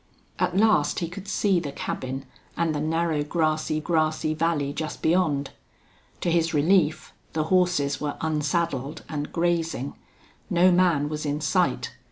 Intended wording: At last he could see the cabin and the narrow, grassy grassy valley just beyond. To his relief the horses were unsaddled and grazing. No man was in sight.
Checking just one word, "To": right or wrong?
right